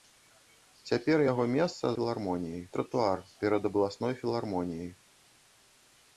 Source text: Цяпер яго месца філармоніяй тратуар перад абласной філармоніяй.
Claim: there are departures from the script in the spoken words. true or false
false